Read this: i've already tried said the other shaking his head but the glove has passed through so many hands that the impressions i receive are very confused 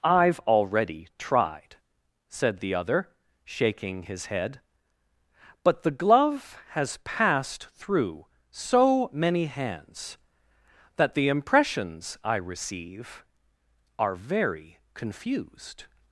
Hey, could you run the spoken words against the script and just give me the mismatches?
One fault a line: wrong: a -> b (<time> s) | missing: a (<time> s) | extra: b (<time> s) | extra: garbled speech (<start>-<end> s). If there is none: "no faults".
no faults